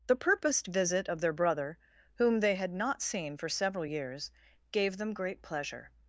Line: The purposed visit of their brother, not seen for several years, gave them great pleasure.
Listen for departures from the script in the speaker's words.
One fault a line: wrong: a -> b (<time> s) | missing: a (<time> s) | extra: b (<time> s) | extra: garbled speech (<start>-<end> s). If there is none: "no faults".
extra: whom they had (2.1 s)